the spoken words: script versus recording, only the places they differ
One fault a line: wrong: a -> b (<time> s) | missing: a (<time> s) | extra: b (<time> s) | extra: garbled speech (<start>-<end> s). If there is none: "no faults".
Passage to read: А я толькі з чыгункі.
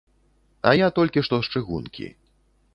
extra: што (1.3 s)